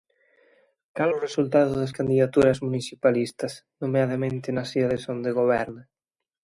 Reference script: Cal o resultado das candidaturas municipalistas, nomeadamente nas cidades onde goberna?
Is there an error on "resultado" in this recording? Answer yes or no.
no